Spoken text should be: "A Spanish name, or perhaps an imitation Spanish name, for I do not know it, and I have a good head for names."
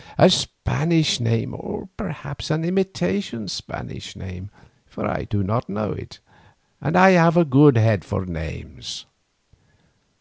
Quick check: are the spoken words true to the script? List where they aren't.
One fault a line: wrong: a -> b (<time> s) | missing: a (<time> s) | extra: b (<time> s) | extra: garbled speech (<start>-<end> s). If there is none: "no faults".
no faults